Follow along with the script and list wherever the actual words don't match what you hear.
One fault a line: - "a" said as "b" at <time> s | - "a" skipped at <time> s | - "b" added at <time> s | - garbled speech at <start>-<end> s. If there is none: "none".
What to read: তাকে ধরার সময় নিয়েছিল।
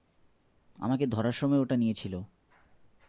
- "তাকে" said as "আমাকে" at 0.8 s
- "ওটা" added at 1.6 s